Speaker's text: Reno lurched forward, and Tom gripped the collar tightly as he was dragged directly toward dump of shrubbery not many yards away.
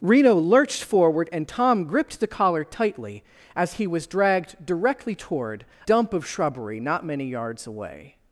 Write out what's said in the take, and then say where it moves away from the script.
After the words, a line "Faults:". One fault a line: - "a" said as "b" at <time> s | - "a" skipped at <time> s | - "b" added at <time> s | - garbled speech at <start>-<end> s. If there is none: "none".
Reno lurched forward, and Tom gripped the collar tightly as he was dragged directly toward dump of shrubbery not many yards away.
Faults:
none